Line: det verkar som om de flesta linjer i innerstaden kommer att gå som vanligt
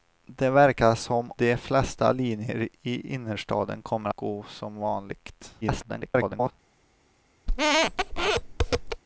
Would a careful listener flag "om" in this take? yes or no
yes